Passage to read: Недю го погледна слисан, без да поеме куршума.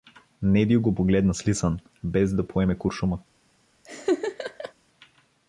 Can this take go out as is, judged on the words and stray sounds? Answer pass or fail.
fail